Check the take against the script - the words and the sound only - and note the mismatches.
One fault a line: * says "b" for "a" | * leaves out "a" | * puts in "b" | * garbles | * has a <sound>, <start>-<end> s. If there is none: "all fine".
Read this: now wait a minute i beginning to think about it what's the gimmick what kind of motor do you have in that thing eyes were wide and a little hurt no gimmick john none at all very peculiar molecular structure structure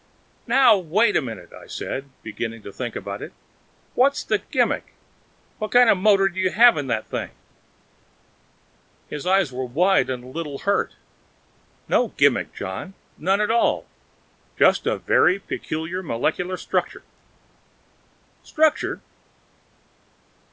* puts in "said"
* puts in "his"
* puts in "just a"